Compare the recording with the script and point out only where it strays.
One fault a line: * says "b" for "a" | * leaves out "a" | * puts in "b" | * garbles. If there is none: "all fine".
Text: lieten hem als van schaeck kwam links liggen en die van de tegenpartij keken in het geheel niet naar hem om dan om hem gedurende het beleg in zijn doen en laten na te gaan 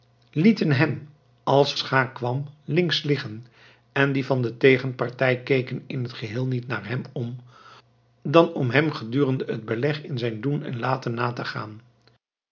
* leaves out "van"